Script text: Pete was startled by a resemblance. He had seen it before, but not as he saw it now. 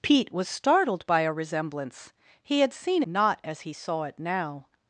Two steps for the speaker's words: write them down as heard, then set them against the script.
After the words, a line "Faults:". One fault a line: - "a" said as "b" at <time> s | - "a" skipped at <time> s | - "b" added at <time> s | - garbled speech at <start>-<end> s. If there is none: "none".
Pete was startled by a resemblance. He had seen not as he saw it now.
Faults:
- "it before but" skipped at 3.0 s